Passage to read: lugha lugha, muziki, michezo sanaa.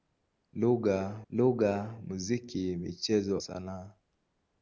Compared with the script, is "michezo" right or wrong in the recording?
right